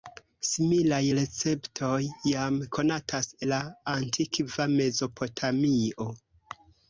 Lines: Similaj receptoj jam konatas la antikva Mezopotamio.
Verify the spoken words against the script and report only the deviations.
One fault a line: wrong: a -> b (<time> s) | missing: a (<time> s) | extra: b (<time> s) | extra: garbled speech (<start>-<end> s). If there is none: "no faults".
no faults